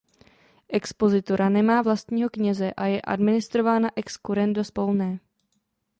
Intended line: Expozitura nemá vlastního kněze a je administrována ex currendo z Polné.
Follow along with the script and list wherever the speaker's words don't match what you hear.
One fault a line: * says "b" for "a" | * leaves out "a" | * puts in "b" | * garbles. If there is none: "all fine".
all fine